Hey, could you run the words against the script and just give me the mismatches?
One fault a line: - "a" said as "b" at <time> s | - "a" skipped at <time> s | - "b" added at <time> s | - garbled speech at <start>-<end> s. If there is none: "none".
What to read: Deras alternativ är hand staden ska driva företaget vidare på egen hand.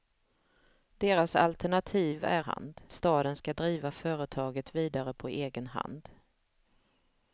none